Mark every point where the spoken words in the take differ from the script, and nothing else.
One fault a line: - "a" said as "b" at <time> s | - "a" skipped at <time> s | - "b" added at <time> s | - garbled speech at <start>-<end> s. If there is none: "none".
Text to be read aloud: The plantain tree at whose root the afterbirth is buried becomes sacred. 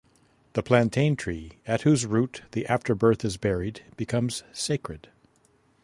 none